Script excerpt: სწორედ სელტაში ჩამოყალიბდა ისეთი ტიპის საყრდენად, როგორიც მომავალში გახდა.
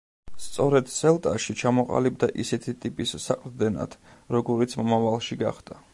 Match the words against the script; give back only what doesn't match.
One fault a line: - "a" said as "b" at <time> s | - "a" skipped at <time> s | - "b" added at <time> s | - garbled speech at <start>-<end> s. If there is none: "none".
none